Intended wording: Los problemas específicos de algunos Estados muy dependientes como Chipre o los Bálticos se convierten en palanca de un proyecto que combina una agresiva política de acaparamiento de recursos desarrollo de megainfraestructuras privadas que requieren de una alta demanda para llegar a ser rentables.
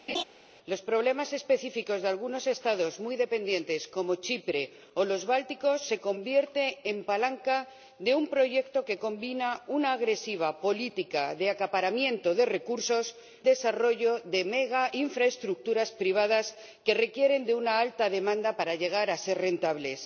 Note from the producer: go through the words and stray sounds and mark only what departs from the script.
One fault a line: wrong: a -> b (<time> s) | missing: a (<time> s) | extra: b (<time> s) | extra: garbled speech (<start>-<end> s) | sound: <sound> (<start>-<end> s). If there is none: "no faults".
sound: laugh (0.1-0.2 s)